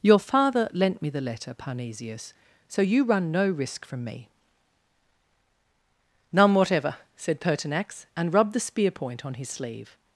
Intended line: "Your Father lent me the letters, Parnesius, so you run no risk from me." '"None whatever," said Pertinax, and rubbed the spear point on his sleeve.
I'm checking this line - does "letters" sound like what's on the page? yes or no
no